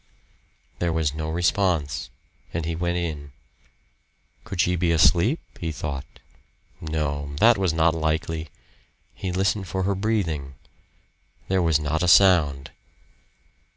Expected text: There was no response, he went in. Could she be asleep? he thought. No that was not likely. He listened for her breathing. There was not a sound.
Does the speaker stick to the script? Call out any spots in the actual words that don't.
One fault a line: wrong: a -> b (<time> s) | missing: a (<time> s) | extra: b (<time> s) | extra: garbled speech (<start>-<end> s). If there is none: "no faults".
extra: and (2.5 s)